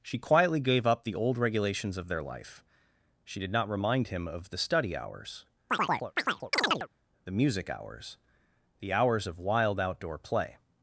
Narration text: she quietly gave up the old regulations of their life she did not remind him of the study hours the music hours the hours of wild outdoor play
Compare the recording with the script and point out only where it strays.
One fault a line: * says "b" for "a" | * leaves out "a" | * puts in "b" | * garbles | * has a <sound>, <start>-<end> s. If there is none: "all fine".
* has a chirp, 5.7-6.9 s